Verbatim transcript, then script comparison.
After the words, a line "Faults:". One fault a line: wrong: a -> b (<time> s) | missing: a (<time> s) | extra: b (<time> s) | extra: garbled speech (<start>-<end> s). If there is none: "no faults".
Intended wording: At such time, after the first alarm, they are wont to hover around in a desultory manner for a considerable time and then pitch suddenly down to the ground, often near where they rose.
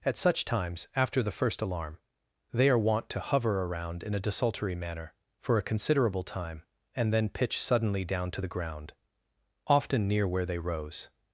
At such times, after the first alarm, they are wont to hover around in a desultory manner for a considerable time and then pitch suddenly down to the ground, often near where they rose.
Faults:
wrong: time -> times (0.5 s)